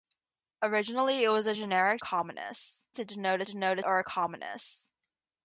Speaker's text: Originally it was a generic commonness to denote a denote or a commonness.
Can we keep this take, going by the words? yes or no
yes